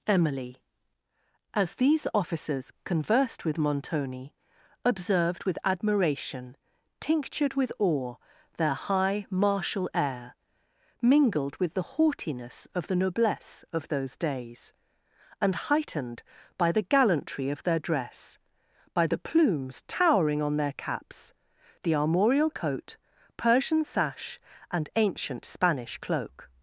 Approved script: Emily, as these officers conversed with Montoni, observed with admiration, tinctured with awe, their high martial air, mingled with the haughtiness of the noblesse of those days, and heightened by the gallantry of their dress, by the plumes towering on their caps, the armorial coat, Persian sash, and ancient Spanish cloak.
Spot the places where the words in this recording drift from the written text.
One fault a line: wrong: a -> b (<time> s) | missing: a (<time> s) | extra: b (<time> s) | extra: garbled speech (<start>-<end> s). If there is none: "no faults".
no faults